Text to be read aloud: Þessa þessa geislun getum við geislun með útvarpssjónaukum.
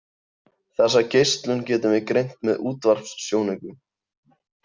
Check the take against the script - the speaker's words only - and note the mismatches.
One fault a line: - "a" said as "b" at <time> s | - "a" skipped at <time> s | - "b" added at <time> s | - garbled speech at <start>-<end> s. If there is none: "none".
- "þessa" skipped at 1.0 s
- "geislun" said as "greint" at 2.1 s